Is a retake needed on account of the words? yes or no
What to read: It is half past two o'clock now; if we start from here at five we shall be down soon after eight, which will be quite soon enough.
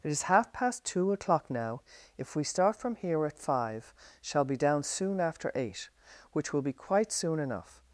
yes